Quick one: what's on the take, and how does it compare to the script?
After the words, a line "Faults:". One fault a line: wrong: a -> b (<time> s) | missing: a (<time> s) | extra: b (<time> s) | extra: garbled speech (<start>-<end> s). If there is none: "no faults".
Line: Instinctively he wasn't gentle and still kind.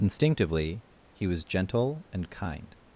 Instinctively he was gentle and kind.
Faults:
wrong: wasn't -> was (1.3 s)
missing: still (2.3 s)